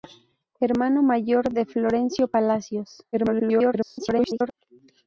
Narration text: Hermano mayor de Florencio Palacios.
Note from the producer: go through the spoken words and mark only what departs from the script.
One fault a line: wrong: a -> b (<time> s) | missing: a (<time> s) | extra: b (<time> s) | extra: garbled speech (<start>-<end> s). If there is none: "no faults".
extra: garbled speech (3.1-4.5 s)